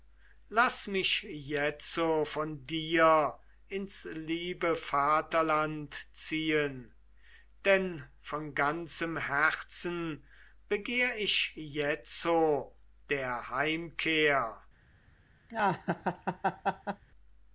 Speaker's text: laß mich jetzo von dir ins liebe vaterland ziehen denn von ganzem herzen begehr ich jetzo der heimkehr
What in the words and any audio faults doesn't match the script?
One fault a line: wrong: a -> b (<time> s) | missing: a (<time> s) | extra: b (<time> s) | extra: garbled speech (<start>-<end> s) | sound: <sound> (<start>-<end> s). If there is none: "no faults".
sound: laugh (15.5-17.0 s)